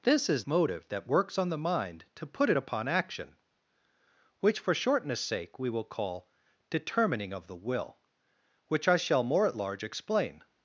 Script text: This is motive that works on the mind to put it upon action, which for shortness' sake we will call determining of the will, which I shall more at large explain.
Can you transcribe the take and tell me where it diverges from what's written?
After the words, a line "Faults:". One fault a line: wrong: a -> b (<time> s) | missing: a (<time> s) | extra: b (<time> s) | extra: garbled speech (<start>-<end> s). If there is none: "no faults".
This is motive that works on the mind to put it upon action, which for shortness' sake we will call determining of the will, which I shall more at large explain.
Faults:
no faults